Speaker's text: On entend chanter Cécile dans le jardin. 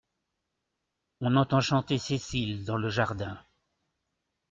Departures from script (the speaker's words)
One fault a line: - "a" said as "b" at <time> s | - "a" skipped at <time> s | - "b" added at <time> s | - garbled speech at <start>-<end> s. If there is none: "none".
none